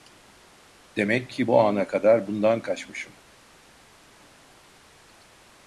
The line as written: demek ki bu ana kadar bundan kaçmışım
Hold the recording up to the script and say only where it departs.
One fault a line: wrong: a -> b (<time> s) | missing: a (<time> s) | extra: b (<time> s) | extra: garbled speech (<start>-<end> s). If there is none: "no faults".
no faults